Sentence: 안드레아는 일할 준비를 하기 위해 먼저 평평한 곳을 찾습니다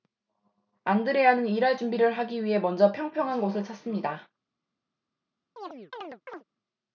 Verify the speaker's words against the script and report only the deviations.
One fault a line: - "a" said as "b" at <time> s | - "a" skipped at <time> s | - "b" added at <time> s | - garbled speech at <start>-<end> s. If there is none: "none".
none